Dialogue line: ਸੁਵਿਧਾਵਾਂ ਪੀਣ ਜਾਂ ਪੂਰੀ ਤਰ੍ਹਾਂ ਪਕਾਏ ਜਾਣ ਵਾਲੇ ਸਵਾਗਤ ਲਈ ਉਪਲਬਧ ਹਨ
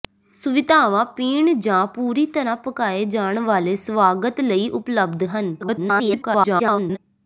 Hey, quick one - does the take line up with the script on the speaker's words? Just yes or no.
no